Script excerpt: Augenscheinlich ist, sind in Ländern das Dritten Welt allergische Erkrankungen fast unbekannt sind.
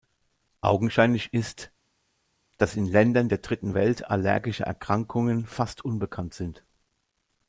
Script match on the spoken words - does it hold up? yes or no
no